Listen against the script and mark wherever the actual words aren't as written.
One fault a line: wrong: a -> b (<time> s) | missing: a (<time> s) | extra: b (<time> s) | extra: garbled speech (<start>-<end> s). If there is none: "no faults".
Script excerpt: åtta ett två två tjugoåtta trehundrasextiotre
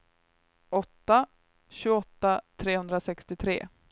missing: ett två två (1.3 s)